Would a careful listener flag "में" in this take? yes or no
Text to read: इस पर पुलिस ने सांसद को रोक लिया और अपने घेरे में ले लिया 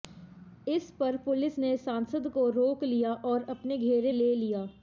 yes